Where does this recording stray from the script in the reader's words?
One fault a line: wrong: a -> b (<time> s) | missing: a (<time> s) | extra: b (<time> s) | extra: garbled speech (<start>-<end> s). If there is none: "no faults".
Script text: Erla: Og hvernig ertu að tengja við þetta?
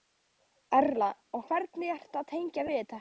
no faults